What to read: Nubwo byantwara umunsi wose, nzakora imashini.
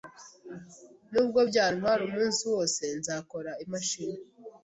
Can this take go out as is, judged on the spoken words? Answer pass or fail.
pass